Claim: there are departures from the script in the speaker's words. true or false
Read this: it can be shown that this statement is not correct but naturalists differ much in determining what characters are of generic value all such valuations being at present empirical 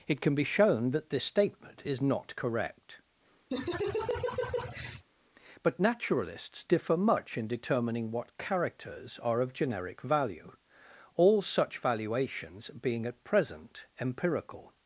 false